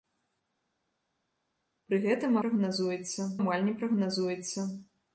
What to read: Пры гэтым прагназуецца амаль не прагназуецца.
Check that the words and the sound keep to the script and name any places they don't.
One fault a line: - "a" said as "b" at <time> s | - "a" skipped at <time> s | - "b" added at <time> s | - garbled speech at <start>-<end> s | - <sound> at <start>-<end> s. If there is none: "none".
none